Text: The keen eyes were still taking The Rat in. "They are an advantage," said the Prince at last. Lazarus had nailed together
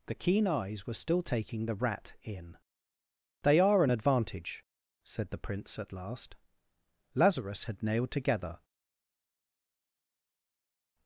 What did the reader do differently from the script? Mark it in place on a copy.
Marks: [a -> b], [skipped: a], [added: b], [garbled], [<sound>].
The keen eyes were still taking The Rat in. "They are an advantage," said the Prince at last. Lazarus had nailed together